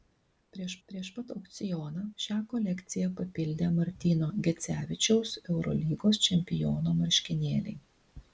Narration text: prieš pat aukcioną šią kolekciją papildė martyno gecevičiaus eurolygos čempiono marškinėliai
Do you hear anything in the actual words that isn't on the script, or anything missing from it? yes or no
yes